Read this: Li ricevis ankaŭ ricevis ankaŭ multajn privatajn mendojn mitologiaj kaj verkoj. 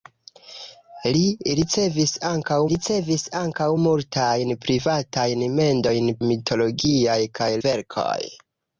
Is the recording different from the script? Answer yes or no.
no